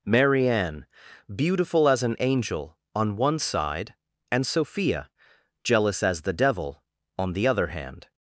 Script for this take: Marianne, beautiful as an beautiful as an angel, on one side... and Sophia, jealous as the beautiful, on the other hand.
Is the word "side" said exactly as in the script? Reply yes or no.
yes